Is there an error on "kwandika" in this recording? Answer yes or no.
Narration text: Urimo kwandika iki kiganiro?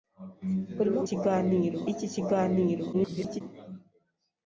yes